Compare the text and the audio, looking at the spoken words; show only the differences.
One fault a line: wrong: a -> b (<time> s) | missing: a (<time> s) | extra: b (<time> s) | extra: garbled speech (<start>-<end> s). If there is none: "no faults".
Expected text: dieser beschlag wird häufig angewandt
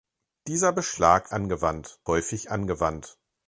wrong: wird -> angewandt (1.3 s)